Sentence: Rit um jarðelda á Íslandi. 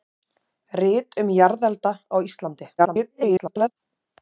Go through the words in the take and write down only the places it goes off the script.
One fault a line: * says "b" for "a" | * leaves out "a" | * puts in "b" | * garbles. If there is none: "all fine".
* garbles